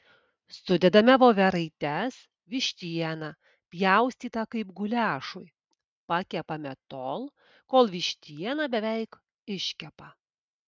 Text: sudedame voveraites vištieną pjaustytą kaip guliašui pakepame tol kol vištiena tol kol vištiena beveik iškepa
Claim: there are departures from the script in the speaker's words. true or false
true